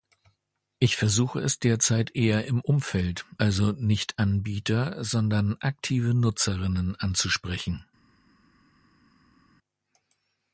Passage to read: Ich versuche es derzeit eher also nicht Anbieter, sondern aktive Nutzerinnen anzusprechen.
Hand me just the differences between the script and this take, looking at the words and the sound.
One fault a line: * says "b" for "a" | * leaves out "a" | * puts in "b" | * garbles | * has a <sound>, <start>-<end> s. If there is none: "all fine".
* puts in "im Umfeld"